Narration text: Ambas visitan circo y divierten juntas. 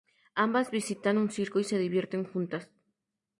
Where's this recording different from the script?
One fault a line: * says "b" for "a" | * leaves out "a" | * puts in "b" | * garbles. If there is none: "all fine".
* puts in "un"
* puts in "se"